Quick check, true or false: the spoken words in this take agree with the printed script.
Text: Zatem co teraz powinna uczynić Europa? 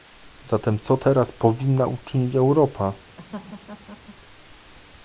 true